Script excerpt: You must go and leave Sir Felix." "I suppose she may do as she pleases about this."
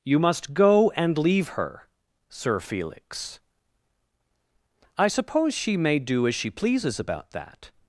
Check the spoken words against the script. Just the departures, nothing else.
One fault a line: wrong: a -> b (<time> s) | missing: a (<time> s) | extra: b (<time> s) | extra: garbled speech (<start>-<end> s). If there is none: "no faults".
extra: her (1.5 s)
wrong: this -> that (7.3 s)